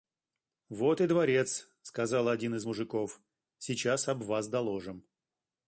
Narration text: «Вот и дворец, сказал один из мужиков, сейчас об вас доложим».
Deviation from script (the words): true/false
false